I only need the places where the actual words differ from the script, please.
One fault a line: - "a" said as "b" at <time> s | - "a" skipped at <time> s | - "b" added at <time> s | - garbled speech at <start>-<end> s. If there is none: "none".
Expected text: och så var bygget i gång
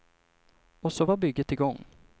none